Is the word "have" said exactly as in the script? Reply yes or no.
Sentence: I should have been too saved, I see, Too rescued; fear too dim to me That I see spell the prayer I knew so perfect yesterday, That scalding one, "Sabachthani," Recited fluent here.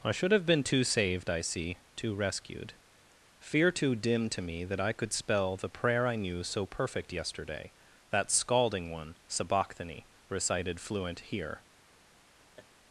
yes